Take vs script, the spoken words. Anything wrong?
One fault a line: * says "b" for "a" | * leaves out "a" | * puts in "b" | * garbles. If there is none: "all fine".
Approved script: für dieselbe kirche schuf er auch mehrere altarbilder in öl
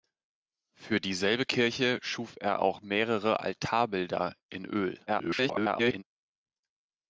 * garbles